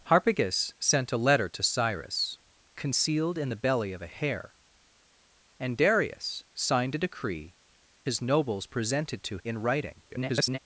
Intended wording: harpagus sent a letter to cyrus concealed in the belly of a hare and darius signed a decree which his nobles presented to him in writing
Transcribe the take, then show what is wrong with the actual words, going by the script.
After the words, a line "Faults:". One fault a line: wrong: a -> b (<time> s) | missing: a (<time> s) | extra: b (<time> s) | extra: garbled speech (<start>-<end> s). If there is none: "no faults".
harpagus sent a letter to cyrus concealed in the belly of a hare and darius signed a decree his nobles presented to in writing [garbled]
Faults:
missing: which (7.6 s)
missing: him (9.4 s)
extra: garbled speech (10.1-10.6 s)